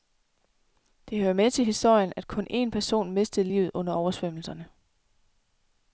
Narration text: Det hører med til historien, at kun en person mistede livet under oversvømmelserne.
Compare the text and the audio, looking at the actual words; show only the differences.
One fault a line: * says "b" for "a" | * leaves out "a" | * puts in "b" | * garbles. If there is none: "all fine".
all fine